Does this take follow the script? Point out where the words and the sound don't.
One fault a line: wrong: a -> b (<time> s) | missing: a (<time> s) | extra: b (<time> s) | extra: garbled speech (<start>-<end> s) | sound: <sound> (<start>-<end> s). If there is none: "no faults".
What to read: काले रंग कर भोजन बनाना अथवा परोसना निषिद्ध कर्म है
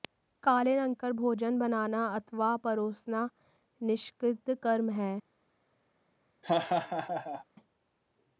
sound: laugh (6.4-7.4 s)